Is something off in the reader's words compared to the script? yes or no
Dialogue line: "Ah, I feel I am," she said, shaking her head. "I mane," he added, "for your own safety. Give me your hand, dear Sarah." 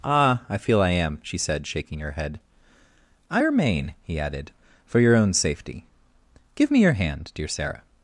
yes